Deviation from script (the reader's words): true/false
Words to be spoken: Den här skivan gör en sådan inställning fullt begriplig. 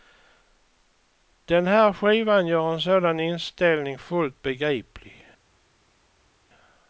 false